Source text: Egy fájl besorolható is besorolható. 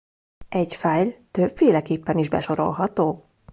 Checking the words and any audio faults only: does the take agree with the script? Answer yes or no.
no